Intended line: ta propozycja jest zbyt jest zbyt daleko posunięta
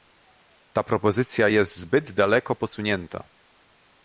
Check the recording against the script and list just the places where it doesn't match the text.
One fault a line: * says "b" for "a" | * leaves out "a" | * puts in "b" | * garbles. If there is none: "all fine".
* leaves out "jest zbyt"